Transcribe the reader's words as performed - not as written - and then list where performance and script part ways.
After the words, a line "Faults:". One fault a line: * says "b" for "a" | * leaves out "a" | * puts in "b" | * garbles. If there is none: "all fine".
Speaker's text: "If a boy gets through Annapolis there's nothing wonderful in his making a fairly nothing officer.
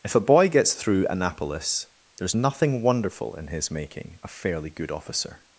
"If a boy gets through Annapolis there's nothing wonderful in his making a fairly good officer.
Faults:
* says "good" for "nothing"